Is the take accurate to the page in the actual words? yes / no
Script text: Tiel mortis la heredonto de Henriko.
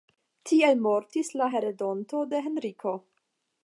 yes